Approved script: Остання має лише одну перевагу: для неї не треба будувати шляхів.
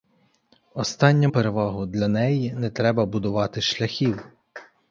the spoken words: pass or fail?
fail